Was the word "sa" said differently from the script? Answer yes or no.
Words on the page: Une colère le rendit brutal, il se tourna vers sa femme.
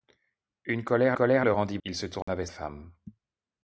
yes